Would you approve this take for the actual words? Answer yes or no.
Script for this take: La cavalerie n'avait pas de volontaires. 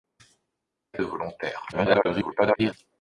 no